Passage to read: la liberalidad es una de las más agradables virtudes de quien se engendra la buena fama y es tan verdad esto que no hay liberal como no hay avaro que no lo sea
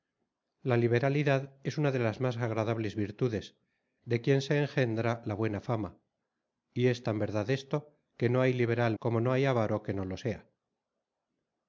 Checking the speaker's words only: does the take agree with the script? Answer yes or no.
yes